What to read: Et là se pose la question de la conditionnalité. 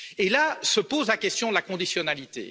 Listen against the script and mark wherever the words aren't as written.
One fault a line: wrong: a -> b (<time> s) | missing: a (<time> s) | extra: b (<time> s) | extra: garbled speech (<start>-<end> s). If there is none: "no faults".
no faults